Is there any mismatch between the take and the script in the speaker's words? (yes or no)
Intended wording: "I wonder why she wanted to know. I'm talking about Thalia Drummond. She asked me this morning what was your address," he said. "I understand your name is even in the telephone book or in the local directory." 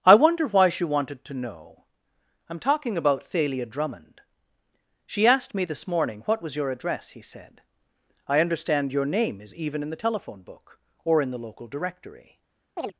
no